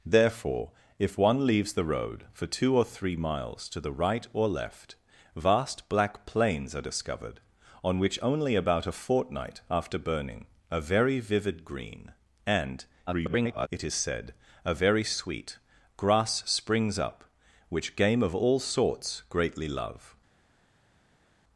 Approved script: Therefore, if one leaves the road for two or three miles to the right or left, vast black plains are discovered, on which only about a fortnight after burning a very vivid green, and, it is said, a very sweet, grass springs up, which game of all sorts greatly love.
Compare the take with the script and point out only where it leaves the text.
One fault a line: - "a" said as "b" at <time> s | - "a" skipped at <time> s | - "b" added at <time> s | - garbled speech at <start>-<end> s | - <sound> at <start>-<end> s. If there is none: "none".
- garbled speech at 13.1-13.7 s